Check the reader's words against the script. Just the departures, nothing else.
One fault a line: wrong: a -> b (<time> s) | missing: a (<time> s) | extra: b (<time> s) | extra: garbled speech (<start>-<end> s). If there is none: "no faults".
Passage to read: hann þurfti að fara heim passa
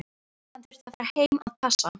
extra: að (1.4 s)